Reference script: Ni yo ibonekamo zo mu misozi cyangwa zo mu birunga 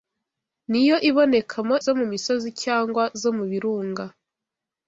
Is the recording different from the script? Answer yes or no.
no